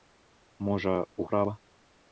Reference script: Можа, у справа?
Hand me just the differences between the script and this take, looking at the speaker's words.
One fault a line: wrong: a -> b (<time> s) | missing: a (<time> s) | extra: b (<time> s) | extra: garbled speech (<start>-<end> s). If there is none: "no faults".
no faults